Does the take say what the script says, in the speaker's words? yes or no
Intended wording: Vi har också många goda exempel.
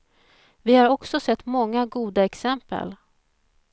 no